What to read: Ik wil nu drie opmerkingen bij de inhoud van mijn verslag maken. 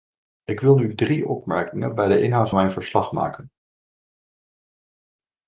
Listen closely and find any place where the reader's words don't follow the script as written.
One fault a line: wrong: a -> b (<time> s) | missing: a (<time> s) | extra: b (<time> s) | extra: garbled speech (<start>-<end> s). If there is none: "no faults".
missing: van (2.5 s)